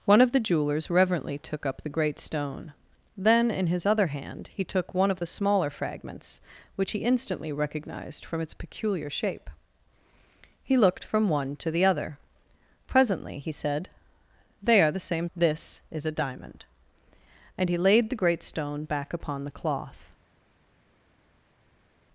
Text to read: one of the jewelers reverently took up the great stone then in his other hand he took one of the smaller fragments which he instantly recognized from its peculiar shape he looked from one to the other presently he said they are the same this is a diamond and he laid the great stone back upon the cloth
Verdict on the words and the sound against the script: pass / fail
pass